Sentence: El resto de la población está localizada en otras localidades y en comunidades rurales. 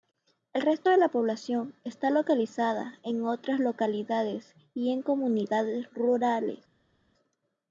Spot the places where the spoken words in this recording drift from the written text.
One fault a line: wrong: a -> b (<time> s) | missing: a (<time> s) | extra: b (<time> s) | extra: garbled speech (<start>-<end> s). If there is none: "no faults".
no faults